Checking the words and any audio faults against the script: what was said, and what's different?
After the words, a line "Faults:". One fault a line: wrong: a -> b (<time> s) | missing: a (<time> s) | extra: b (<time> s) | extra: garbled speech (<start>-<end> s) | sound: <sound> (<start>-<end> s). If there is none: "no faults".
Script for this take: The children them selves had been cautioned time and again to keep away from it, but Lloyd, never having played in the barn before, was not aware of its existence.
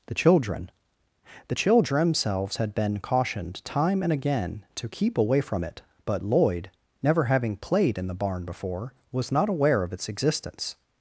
The children the children themselves had been cautioned time and again to keep away from it, but Lloyd, never having played in the barn before, was not aware of its existence.
Faults:
wrong: them selves -> the children themselves (1.5 s)